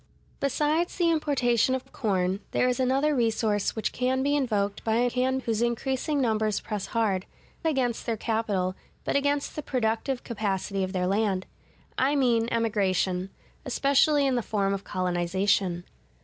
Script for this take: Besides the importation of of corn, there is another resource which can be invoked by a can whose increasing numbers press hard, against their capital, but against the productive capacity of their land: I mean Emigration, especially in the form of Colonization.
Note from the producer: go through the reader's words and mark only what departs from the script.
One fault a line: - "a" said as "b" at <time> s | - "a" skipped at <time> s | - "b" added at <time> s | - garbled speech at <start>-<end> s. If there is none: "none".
none